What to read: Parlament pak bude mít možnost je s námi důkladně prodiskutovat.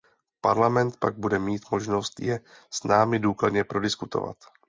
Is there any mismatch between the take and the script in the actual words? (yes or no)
no